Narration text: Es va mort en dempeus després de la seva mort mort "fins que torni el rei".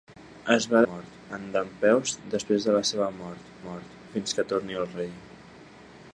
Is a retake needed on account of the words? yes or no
no